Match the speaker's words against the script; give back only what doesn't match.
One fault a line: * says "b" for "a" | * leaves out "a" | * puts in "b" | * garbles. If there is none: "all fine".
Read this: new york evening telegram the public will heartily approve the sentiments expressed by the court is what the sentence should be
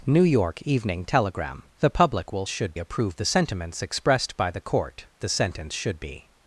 * says "should" for "heartily"
* leaves out "is what"